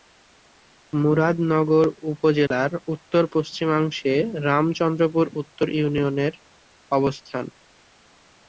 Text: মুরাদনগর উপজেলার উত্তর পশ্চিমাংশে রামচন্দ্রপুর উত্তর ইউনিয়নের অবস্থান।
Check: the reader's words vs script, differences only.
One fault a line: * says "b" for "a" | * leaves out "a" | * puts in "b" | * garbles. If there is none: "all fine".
all fine